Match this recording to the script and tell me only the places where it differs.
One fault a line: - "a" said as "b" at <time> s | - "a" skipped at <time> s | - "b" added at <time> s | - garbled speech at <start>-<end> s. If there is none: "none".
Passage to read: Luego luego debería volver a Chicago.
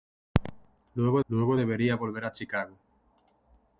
none